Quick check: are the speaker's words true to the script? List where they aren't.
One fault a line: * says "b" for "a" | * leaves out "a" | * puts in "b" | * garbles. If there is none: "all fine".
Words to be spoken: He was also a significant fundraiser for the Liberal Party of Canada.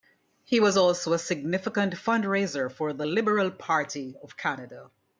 all fine